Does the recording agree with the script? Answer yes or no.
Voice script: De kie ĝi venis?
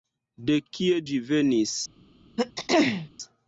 yes